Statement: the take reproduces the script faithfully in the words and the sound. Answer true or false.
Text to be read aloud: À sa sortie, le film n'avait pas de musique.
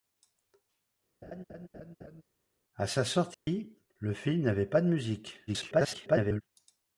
false